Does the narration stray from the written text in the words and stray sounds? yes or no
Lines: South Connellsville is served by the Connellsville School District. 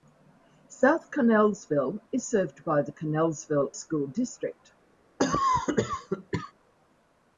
yes